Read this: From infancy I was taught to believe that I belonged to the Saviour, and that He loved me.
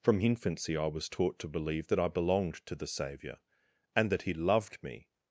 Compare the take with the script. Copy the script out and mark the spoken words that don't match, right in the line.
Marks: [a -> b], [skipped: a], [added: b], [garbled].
From infancy I was taught to believe that I belonged to the Saviour, and that He loved me.